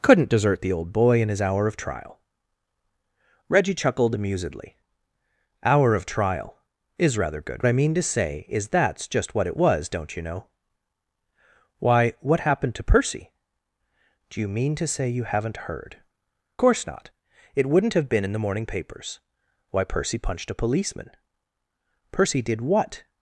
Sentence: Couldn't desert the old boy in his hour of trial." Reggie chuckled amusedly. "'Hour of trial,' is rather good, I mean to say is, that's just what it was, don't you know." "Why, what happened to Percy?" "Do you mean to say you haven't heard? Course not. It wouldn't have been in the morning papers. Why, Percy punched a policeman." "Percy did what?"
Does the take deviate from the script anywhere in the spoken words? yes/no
no